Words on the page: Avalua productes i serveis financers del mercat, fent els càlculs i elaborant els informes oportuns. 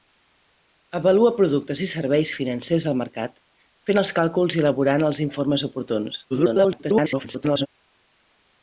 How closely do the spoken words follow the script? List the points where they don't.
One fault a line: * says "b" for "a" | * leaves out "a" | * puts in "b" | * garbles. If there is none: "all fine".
* garbles